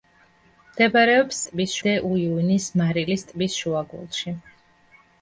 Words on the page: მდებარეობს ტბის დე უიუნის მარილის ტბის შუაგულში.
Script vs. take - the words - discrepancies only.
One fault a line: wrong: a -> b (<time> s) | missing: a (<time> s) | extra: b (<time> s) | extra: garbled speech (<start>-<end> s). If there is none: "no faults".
no faults